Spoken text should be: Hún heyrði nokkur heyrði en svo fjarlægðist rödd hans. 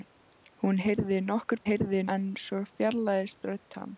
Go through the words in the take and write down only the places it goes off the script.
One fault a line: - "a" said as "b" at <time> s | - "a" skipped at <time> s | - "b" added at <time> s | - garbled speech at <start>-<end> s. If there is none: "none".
none